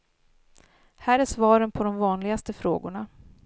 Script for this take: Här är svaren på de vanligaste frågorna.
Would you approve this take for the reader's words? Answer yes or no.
yes